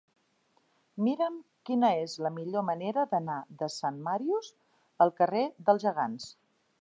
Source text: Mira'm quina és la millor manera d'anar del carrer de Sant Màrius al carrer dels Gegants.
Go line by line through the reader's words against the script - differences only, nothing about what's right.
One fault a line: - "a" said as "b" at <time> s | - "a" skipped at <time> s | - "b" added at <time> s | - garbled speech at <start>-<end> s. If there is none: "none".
- "del carrer" skipped at 3.4 s